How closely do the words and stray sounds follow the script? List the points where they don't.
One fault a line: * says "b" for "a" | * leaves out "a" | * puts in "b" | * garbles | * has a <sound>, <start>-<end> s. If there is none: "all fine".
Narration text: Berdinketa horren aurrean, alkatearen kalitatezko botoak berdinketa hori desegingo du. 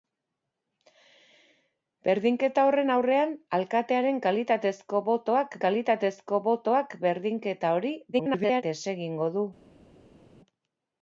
* puts in "kalitatezko botoak"
* garbles